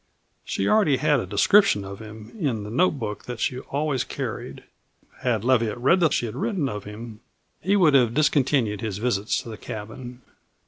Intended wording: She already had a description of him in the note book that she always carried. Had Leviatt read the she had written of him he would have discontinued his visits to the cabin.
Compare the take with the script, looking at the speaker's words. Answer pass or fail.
pass